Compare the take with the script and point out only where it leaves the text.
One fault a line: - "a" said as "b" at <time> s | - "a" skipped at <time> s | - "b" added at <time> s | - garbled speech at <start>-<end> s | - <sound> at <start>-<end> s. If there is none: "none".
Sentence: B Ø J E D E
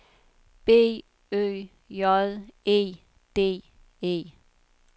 none